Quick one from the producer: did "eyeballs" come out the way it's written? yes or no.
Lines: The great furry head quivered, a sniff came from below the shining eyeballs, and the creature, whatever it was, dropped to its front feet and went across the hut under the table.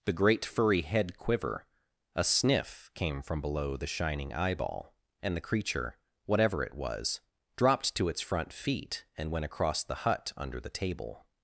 no